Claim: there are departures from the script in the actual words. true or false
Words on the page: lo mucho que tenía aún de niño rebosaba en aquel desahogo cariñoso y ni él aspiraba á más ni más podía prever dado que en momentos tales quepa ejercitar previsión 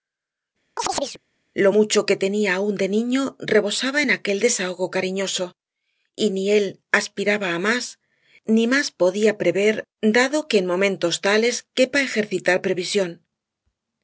false